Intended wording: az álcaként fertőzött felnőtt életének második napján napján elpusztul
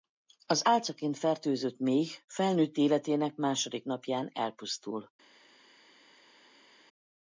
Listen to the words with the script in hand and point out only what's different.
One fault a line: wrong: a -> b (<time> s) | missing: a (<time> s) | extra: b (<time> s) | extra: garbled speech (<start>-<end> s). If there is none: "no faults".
extra: méh (1.8 s)
missing: napján (4.3 s)